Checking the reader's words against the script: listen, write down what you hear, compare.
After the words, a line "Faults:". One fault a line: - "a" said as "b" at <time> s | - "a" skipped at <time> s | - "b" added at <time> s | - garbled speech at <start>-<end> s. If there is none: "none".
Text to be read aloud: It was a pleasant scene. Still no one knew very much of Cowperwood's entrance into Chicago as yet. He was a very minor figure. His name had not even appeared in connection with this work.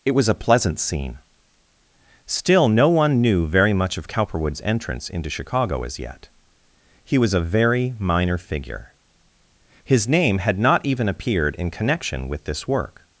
It was a pleasant scene. Still no one knew very much of Cowperwood's entrance into Chicago as yet. He was a very minor figure. His name had not even appeared in connection with this work.
Faults:
none